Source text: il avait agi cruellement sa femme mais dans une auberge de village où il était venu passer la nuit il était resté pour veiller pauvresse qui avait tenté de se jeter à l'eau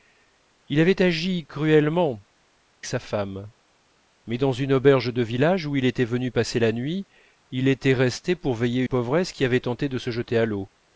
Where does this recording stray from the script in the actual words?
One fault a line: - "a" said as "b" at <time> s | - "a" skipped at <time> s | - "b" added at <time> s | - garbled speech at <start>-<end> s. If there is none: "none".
none